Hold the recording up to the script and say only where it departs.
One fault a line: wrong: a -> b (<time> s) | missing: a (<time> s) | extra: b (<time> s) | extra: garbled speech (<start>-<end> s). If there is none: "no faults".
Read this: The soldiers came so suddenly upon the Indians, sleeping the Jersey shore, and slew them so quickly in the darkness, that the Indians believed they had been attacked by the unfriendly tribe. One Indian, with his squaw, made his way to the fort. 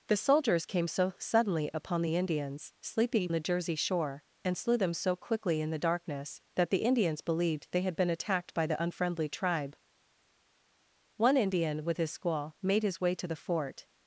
no faults